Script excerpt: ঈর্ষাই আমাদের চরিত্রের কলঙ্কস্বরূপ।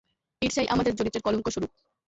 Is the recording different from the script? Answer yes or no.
no